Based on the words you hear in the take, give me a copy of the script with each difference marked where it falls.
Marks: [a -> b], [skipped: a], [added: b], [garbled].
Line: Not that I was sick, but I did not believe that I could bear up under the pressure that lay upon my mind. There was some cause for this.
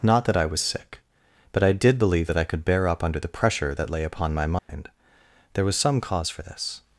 Not that I was sick, but I did [skipped: not] believe that I could bear up under the pressure that lay upon my mind. There was some cause for this.